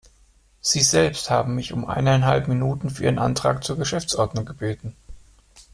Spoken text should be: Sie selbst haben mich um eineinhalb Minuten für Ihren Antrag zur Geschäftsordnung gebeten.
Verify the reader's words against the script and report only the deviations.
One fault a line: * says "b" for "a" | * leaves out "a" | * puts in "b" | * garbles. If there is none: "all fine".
all fine